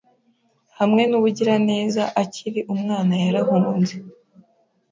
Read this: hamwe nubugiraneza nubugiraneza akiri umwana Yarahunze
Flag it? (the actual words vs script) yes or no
yes